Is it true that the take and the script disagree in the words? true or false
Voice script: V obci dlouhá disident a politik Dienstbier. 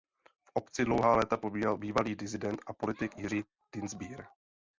true